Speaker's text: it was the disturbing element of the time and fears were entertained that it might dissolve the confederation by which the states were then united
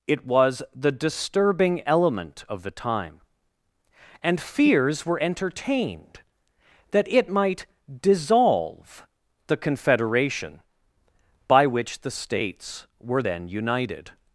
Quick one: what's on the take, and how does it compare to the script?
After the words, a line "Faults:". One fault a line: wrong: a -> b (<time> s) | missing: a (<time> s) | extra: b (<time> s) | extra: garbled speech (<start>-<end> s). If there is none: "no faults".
it was the disturbing element of the time and fears were entertained that it might dissolve the confederation by which the states were then united
Faults:
no faults